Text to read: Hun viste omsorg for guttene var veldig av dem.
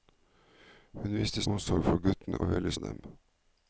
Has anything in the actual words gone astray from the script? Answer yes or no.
no